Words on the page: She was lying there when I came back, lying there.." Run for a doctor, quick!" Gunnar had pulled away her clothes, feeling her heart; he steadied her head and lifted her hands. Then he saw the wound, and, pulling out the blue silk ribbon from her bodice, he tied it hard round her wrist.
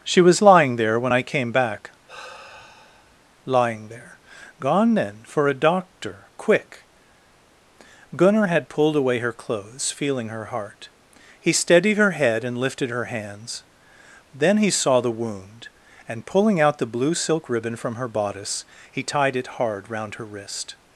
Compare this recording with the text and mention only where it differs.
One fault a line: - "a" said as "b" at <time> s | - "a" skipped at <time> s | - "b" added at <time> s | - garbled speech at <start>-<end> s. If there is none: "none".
- "Run" said as "Gone then" at 4.6 s